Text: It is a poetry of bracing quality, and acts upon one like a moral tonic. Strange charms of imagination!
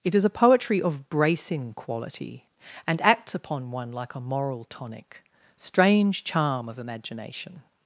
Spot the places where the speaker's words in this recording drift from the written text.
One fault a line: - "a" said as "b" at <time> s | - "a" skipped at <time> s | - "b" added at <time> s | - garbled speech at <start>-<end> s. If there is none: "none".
- "charms" said as "charm" at 6.2 s